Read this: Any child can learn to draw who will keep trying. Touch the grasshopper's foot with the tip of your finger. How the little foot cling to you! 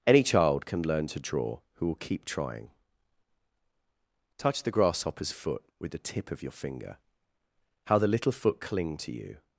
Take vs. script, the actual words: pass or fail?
pass